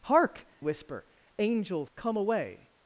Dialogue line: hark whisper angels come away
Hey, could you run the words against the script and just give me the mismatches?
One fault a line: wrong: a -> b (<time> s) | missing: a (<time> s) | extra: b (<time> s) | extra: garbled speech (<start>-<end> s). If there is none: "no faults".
no faults